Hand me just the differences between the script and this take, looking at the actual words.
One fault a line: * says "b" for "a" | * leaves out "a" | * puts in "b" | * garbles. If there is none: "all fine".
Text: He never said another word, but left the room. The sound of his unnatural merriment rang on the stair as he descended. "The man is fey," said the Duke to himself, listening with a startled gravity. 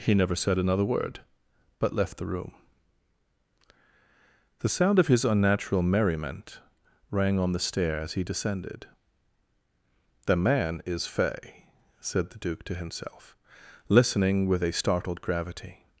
all fine